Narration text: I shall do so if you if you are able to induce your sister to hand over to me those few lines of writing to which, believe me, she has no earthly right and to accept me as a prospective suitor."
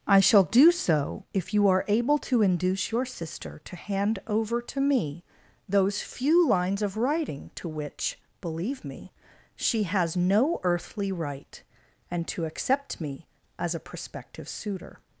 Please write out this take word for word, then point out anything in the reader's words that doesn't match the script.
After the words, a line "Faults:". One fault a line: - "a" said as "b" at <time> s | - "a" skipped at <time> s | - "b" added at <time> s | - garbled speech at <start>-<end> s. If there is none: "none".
I shall do so if you are able to induce your sister to hand over to me those few lines of writing to which, believe me, she has no earthly right and to accept me as a prospective suitor."
Faults:
- "if you" skipped at 1.7 s